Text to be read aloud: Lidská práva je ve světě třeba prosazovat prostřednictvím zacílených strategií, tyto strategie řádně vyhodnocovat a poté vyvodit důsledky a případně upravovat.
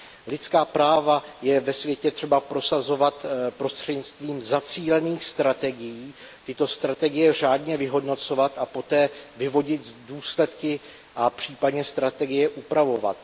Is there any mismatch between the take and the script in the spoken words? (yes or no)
yes